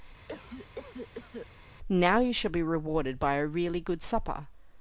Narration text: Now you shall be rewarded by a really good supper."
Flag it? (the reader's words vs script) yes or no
no